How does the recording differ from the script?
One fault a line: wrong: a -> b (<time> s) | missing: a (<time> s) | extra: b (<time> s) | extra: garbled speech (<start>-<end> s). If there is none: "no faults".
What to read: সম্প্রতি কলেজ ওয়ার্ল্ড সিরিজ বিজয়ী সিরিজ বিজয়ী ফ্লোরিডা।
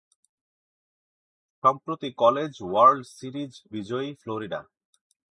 missing: সিরিজ বিজয়ী (4.1 s)